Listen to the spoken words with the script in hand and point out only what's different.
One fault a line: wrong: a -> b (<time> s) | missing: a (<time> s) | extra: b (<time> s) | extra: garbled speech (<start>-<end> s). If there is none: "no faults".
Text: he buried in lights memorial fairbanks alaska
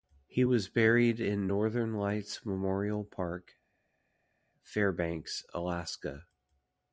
extra: was (0.4 s)
extra: northern (1.5 s)
extra: park (3.0 s)